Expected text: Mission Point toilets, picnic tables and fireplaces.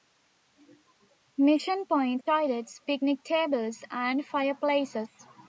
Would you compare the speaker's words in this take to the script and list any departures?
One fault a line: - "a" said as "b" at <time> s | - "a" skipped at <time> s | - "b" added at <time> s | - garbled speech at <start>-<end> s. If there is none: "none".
none